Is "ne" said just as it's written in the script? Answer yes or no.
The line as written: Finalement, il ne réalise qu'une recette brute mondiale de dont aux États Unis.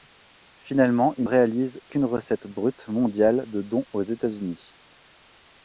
no